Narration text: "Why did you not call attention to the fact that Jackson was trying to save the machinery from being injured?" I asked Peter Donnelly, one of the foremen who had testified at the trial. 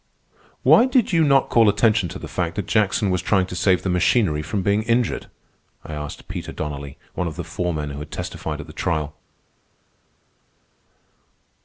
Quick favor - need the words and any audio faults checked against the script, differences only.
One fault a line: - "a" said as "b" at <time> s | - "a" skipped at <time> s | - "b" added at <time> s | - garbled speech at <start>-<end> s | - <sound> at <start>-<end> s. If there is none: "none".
none